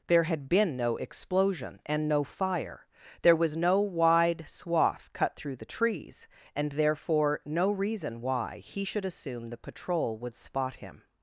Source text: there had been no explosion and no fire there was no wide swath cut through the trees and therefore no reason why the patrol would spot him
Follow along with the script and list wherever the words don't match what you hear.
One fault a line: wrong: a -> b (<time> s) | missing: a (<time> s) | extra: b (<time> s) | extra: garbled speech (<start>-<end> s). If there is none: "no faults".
extra: he should assume (8.6 s)